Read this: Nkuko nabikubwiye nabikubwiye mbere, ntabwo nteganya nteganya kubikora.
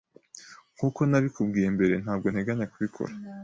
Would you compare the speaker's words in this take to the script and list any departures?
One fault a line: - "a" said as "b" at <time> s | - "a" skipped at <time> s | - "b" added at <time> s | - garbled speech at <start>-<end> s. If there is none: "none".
- "nabikubwiye" skipped at 1.7 s
- "nteganya" skipped at 2.6 s